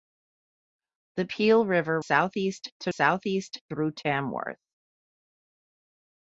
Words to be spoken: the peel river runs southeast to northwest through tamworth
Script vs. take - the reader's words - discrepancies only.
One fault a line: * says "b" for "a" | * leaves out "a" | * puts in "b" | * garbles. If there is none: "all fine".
* leaves out "runs"
* says "southeast" for "northwest"